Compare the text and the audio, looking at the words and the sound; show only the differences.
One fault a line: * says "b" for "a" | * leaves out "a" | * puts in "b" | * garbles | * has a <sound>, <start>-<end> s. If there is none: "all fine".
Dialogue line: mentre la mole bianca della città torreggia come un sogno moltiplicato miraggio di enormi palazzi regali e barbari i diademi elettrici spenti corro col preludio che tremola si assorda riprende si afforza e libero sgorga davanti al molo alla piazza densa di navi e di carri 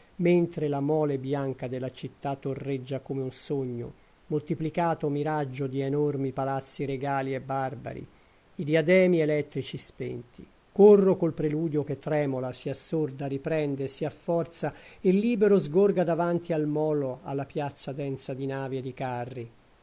all fine